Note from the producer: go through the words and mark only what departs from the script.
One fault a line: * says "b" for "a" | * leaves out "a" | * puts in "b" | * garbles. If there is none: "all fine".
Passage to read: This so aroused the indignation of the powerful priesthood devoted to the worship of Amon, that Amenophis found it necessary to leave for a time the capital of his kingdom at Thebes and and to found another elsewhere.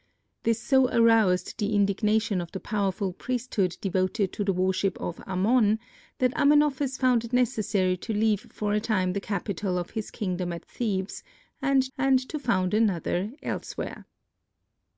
all fine